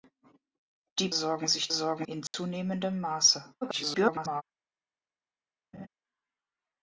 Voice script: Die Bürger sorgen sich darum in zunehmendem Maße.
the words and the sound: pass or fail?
fail